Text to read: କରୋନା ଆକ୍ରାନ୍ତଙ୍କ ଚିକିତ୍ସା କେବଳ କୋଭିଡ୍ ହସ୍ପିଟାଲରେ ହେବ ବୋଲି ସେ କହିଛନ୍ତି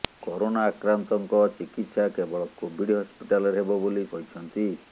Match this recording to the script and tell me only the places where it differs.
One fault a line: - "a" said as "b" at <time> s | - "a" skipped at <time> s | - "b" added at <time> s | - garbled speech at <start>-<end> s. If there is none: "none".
- "ସେ" skipped at 4.1 s